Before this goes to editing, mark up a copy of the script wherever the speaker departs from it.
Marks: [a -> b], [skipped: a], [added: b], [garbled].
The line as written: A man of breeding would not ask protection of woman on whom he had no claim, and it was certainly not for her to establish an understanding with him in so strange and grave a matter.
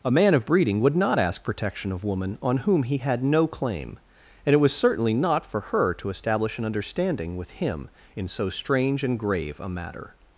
A man of breeding would not ask protection of woman on whom he had no claim, and it was certainly not for her to establish an understanding with him in so strange and grave a matter.